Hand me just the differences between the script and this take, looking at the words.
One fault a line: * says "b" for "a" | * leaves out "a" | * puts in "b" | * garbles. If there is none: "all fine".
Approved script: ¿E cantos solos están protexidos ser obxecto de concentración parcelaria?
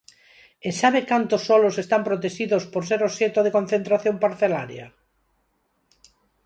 * puts in "sabe"
* puts in "por"